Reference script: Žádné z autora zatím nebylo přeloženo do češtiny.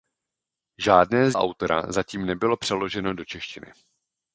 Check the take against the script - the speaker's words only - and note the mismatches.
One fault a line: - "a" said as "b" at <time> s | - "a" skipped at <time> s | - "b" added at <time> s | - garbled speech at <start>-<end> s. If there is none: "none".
none